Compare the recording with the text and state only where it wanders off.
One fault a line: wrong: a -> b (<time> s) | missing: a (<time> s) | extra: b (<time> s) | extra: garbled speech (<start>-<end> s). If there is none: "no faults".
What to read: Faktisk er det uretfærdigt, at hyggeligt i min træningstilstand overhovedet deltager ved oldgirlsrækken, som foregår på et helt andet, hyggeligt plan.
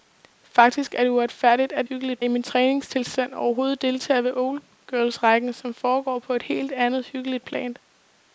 no faults